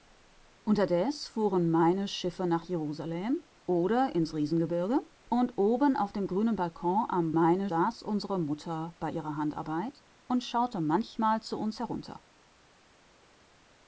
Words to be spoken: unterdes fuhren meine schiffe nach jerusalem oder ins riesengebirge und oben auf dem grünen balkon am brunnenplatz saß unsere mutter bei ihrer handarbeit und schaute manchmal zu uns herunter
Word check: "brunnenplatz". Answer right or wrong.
wrong